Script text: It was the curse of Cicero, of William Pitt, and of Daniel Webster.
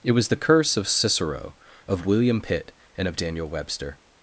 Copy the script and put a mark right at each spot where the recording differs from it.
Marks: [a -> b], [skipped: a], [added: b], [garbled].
It was the curse of Cicero, of William Pitt, and of Daniel Webster.